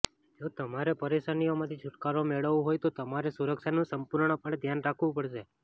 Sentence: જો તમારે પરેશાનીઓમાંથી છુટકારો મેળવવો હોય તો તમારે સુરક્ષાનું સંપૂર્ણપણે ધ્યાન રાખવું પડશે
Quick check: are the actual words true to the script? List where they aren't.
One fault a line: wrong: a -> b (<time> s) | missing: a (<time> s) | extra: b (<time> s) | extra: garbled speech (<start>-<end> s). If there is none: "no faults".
no faults